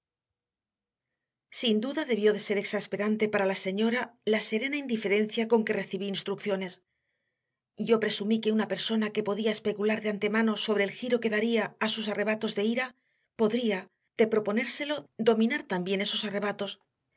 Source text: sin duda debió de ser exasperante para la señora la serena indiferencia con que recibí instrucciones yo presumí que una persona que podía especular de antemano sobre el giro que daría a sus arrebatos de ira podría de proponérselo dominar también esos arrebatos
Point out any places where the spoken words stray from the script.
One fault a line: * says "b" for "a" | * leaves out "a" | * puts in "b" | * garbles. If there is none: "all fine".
all fine